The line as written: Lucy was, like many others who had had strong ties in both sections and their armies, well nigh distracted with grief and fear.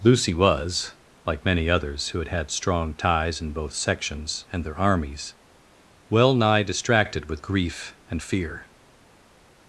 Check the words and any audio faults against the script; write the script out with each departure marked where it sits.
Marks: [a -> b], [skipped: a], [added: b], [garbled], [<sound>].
Lucy was, like many others who had had strong ties in both sections and their armies, well nigh distracted with grief and fear.